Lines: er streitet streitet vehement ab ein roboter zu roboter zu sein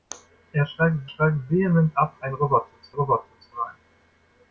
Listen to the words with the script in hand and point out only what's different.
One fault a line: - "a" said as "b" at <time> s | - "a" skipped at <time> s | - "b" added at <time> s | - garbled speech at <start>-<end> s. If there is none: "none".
none